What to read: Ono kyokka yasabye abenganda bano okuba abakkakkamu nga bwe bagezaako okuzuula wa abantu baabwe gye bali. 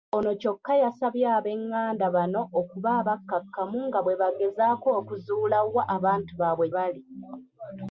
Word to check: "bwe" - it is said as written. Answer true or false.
true